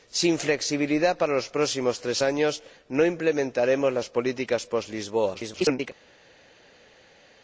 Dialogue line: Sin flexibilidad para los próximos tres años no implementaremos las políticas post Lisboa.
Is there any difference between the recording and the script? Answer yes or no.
yes